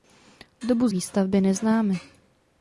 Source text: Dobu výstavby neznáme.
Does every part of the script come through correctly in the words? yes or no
yes